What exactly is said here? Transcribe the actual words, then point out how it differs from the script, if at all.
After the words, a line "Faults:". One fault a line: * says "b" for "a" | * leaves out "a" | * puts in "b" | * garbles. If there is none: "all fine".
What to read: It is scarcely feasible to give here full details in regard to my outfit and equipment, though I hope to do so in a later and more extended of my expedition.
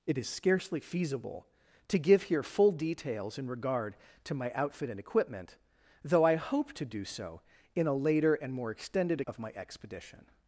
It is scarcely feasible to give here full details in regard to my outfit and equipment, though I hope to do so in a later and more extended of my expedition.
Faults:
all fine